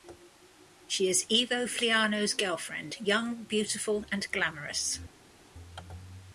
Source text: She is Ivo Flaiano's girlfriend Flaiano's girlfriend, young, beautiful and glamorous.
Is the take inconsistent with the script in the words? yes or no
yes